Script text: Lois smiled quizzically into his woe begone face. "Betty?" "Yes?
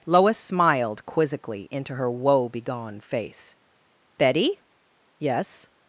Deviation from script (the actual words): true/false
true